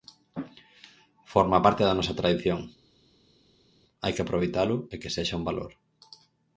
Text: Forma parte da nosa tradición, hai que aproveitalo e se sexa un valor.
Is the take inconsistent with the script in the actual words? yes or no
yes